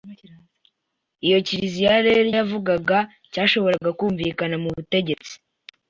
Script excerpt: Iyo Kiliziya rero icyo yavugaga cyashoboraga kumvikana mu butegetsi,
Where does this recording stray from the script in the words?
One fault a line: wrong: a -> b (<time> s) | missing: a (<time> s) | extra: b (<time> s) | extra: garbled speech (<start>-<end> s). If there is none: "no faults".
missing: icyo (2.3 s)